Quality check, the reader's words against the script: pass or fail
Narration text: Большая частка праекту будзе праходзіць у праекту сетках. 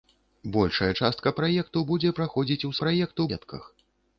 pass